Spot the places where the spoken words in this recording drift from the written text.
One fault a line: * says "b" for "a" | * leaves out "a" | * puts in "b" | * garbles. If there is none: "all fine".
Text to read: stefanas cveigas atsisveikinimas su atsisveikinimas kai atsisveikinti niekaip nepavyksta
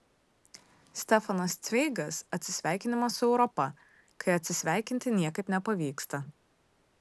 * says "europa" for "atsisveikinimas"